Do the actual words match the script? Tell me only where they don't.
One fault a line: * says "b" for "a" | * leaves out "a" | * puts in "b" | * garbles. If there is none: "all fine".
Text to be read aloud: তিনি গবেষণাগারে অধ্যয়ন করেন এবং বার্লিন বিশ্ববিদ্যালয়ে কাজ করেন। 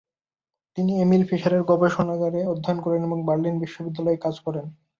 * puts in "এমিল ফিশারের"